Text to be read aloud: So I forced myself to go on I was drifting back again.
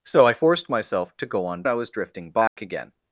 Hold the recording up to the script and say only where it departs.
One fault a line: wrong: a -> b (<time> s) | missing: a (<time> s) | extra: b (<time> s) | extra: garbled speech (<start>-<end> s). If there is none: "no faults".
no faults